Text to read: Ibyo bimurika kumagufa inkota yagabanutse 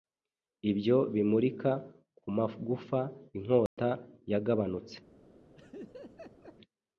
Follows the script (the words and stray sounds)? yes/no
no